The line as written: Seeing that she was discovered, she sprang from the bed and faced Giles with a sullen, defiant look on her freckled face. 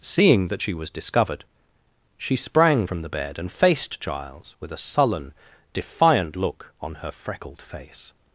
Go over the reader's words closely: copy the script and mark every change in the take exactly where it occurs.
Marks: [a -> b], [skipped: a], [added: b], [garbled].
Seeing that she was discovered, she sprang from the bed and faced Giles with a sullen, defiant look on her freckled face.